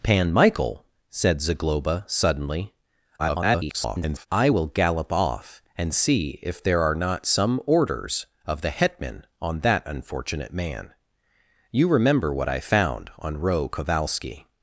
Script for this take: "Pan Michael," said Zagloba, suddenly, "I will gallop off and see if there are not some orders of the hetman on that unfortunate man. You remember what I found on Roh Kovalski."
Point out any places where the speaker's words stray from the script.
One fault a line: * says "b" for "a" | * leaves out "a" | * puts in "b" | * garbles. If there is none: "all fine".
* garbles